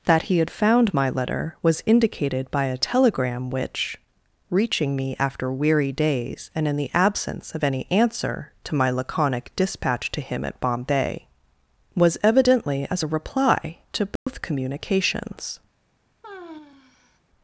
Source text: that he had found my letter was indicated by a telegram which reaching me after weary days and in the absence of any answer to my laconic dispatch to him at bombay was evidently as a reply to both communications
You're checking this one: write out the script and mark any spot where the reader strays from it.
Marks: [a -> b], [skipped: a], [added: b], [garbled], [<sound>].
that he had found my letter was indicated by a telegram which reaching me after weary days and in the absence of any answer to my laconic dispatch to him at bombay was evidently as a reply to both [dropout] communications [sigh]